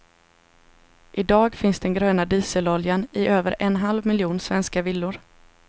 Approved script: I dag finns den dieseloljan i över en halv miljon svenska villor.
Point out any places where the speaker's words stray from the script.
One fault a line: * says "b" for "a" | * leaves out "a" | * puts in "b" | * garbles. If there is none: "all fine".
* puts in "gröna"